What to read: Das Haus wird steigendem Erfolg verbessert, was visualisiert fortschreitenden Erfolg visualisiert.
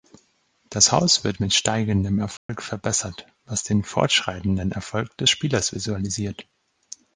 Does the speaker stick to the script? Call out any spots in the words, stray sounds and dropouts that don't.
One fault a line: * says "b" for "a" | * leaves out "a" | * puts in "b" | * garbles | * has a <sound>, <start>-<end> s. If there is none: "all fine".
* puts in "mit"
* has a dropout, 2.4-2.5 s
* says "den" for "visualisiert"
* puts in "des Spielers"